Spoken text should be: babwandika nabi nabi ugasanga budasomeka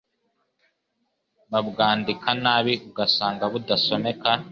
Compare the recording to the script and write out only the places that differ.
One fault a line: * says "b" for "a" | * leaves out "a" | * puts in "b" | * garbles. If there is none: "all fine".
* leaves out "nabi"